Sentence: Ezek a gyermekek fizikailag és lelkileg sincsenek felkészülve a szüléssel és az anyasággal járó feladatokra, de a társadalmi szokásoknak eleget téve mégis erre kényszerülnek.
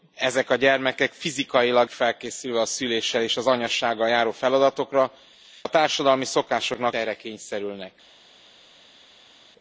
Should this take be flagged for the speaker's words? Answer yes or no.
yes